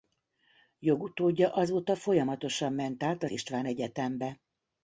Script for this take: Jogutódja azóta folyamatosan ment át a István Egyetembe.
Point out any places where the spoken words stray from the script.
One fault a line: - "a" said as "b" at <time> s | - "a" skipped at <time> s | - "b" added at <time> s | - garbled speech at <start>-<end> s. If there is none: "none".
none